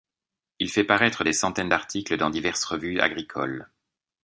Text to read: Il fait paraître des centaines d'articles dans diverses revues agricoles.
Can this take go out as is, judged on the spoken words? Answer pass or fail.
pass